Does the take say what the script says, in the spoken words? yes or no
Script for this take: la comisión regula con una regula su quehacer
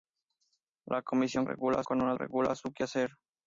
yes